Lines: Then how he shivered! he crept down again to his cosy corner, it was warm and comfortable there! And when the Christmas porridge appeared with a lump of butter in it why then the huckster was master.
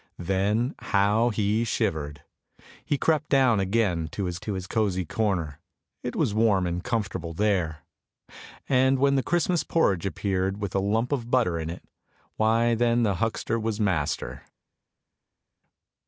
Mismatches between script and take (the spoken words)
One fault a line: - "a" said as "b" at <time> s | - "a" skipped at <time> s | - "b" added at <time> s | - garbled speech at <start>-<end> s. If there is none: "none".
- "to his" added at 4.4 s